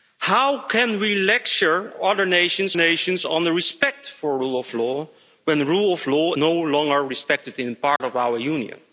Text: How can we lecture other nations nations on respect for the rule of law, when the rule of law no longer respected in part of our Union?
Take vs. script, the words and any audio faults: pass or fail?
fail